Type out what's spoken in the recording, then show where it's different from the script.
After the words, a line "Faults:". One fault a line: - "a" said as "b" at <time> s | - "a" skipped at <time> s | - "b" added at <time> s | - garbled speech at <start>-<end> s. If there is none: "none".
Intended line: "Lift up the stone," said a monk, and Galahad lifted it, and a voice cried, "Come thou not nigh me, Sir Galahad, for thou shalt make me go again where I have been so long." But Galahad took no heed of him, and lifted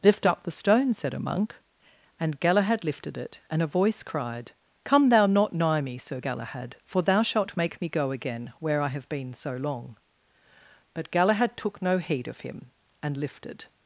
"Lift up the stone," said a monk, and Galahad lifted it, and a voice cried, "Come thou not nigh me, Sir Galahad, for thou shalt make me go again where I have been so long." But Galahad took no heed of him, and lifted
Faults:
none